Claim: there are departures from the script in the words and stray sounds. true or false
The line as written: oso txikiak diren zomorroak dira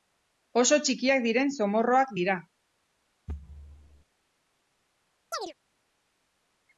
true